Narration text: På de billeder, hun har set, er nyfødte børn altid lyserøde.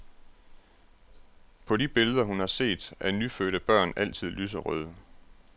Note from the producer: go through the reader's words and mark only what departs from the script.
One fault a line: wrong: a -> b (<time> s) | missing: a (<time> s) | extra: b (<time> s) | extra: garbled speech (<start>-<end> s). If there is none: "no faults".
no faults